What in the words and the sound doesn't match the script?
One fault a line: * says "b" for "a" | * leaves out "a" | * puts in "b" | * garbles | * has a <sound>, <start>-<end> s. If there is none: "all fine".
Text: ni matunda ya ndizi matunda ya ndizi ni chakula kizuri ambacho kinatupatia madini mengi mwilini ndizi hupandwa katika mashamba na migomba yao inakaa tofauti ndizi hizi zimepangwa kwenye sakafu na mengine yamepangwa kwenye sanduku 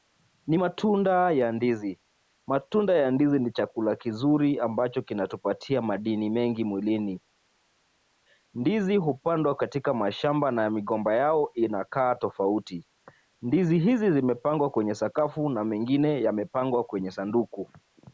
all fine